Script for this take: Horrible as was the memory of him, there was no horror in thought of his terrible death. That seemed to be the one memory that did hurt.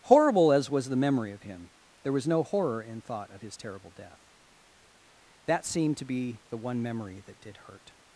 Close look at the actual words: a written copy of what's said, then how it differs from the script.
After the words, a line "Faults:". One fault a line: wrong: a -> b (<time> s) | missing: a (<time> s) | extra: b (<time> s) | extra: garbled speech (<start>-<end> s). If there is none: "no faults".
Horrible as was the memory of him, there was no horror in thought of his terrible death. That seemed to be the one memory that did hurt.
Faults:
no faults